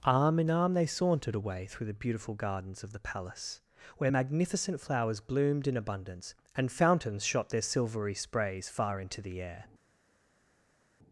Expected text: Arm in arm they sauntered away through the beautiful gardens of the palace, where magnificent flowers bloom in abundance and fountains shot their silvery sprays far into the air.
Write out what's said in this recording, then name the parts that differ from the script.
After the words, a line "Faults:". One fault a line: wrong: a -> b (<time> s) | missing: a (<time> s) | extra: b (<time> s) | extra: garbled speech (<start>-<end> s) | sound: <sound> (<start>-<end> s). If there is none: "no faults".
Arm in arm they sauntered away through the beautiful gardens of the palace, where magnificent flowers bloomed in abundance and fountains shot their silvery sprays far into the air.
Faults:
wrong: bloom -> bloomed (5.2 s)